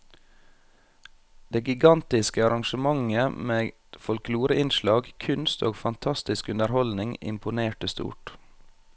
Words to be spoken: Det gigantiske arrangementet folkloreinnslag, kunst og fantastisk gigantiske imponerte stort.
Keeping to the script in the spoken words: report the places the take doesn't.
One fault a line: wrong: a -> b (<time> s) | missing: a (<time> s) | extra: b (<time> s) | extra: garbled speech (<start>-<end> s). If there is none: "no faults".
extra: med (3.5 s)
wrong: gigantiske -> underholdning (6.5 s)